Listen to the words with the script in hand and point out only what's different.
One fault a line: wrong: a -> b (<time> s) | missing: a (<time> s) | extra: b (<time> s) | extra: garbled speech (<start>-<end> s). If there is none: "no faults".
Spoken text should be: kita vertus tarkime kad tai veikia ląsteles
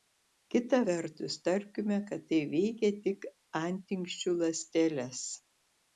extra: tik antinksčių (3.1 s)